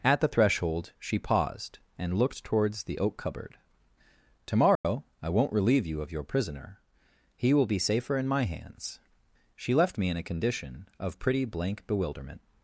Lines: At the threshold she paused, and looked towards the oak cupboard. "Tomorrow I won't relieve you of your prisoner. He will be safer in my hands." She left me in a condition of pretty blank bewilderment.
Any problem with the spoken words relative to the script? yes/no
no